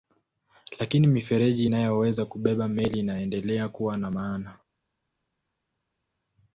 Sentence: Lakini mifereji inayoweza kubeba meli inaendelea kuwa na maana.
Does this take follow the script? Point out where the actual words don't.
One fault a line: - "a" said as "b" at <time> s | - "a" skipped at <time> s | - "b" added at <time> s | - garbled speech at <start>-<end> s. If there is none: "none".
none